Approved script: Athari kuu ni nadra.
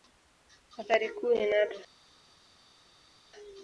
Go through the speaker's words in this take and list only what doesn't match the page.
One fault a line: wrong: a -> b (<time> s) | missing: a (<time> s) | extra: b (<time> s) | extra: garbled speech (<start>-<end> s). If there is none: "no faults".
no faults